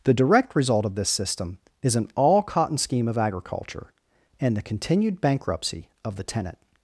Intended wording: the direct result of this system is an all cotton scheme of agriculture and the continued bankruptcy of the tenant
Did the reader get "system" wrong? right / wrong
right